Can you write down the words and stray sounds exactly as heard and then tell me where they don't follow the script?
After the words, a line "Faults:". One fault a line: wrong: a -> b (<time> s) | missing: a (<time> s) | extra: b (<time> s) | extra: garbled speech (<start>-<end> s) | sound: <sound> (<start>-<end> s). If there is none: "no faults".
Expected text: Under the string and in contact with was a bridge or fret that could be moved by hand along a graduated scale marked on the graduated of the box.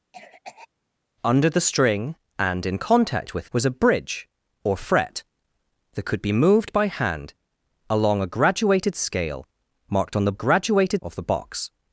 Under the string and in contact with was a bridge or fret that could be moved by hand along a graduated scale marked on the graduated of the box.
Faults:
sound: cough (0.1-0.7 s)